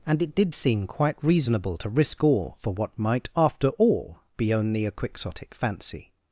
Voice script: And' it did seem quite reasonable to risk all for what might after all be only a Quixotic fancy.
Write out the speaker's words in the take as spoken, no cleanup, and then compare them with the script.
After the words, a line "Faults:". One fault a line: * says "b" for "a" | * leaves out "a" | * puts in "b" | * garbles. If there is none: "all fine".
And' it did seem quite reasonable to risk all for what might after all be only a Quixotic fancy.
Faults:
all fine